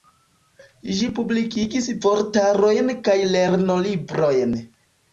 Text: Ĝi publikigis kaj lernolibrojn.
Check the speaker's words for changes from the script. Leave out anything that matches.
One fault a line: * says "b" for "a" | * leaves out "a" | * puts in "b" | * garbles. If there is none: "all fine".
* puts in "vortarojn"